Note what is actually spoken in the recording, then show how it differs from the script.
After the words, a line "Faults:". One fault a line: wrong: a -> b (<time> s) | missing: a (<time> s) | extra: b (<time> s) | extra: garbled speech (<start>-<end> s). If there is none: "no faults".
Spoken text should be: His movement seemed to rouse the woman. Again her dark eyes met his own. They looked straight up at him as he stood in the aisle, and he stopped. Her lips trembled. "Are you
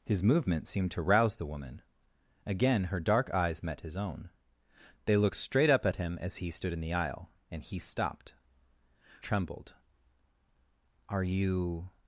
His movement seemed to rouse the woman. Again her dark eyes met his own. They looked straight up at him as he stood in the aisle, and he stopped. Trembled. "Are you
Faults:
missing: Her lips (8.3 s)